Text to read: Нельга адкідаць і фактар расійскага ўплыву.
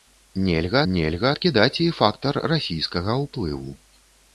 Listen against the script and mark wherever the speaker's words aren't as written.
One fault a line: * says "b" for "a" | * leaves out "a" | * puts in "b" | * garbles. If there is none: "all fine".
* puts in "нельга"